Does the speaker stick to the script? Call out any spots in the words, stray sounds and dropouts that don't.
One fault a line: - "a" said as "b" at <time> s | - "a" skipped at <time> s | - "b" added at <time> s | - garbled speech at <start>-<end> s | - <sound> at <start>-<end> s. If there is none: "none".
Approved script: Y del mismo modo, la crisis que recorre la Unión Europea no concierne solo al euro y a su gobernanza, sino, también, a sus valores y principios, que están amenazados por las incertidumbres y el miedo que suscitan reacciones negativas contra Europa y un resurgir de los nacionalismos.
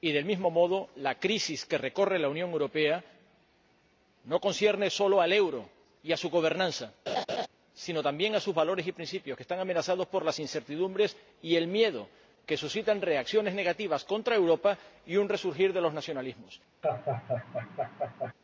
- laugh at 7.1-7.5 s
- laugh at 16.8-18.3 s